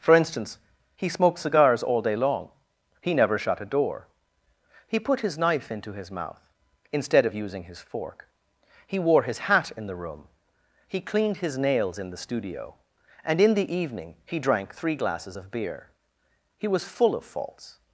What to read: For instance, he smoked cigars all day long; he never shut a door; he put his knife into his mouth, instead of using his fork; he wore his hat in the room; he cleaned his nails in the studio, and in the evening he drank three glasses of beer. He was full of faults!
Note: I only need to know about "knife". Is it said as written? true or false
true